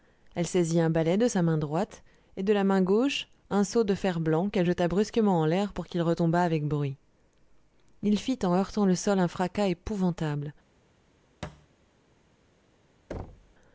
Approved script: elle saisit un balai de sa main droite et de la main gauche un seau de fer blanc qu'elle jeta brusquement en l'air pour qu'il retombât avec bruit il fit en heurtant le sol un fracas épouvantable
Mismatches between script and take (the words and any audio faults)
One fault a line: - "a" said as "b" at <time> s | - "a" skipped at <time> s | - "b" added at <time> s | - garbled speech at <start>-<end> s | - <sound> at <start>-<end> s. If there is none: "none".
- thud at 11.4-11.7 s
- thud at 13.1-13.6 s